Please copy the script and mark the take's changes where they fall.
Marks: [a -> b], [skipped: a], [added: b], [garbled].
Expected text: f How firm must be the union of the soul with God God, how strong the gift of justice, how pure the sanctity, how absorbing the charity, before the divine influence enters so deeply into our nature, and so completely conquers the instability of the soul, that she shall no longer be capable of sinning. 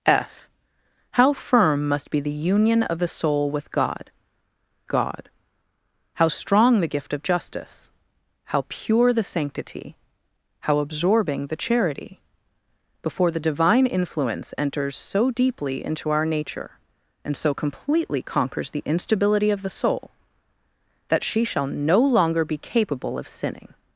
f How firm must be the union of the soul with God God, how strong the gift of justice, how pure the sanctity, how absorbing the charity, before the divine influence enters so deeply into our nature, and so completely conquers the instability of the soul, that she shall no longer be capable of sinning.